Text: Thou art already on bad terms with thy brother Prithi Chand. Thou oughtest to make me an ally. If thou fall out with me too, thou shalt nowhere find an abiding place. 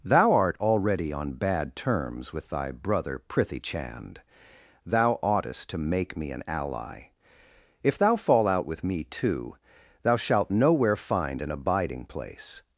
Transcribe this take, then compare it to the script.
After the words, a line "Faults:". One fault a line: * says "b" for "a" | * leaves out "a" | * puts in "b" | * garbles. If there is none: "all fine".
Thou art already on bad terms with thy brother Prithi Chand. Thou oughtest to make me an ally. If thou fall out with me too, thou shalt nowhere find an abiding place.
Faults:
all fine